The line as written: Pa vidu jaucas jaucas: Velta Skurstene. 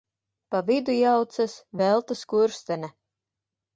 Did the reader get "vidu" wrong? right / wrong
right